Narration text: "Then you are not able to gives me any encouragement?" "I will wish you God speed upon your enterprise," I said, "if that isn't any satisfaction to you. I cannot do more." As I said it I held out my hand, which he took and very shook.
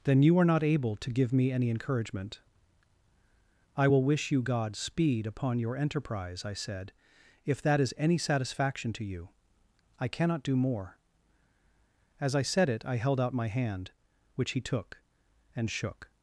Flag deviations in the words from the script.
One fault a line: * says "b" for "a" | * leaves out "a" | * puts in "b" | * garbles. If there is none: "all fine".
* says "give" for "gives"
* says "is" for "isn't"
* leaves out "very"